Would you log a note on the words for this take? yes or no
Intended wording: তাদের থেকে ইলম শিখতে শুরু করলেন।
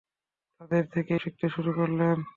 yes